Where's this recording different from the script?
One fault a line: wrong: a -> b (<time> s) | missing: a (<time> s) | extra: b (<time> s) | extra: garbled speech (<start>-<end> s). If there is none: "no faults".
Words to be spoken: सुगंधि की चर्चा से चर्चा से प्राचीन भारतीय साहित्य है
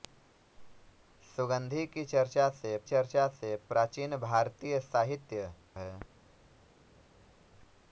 no faults